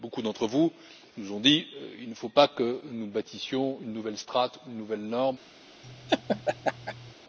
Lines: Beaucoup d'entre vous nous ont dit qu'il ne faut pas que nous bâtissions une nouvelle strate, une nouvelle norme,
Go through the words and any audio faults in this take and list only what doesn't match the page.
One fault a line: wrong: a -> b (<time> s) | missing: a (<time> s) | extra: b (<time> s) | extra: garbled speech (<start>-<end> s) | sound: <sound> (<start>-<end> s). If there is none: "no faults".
sound: laugh (5.8-7.1 s)